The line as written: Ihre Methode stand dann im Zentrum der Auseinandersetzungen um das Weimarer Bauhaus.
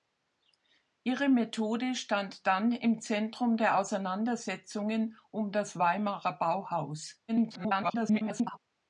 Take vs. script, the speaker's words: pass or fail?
fail